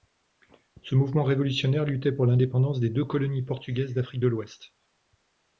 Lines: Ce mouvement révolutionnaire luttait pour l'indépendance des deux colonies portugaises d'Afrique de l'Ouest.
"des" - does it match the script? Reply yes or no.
yes